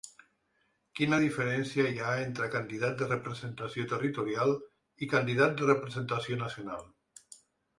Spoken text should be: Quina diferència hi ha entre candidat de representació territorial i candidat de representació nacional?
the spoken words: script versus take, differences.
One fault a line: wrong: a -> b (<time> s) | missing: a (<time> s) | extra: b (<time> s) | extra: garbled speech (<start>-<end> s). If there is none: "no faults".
no faults